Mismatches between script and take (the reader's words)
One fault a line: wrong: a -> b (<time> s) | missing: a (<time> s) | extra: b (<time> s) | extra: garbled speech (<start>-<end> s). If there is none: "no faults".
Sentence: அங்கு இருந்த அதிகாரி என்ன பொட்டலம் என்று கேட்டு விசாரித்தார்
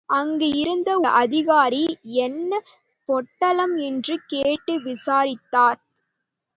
no faults